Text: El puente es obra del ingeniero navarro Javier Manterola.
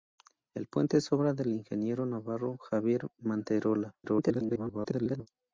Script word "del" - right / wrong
right